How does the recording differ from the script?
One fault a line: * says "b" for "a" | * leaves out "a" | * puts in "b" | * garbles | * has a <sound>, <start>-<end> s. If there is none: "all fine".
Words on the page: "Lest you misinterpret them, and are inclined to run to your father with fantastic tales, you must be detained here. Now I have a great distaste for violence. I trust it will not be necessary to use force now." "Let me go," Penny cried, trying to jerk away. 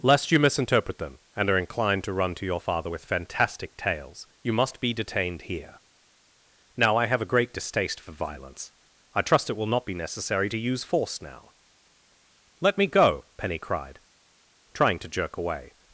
all fine